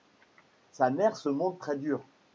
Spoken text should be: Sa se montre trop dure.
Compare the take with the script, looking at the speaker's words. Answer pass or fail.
fail